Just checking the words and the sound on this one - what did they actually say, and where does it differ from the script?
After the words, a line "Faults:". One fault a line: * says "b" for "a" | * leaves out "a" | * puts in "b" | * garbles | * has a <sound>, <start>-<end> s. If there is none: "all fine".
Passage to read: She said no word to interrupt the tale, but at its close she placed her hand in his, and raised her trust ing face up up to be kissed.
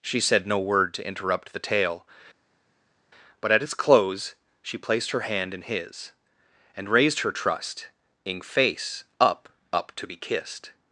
She said no word to interrupt the tale, but at its close she placed her hand in his, and raised her trust ing face up up to be kissed.
Faults:
all fine